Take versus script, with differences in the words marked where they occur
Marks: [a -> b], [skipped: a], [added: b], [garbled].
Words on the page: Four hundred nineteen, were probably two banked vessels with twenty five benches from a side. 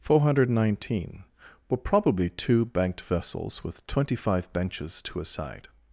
Four hundred nineteen, were probably two banked vessels with twenty five benches [from -> to] a side.